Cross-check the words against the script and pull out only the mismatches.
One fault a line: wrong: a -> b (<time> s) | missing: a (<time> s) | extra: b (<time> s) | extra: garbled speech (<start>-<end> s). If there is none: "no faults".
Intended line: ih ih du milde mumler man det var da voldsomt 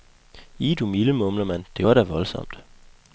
missing: ih (0.8 s)